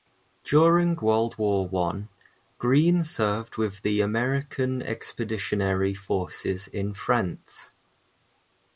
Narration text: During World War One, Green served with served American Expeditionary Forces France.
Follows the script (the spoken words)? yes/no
no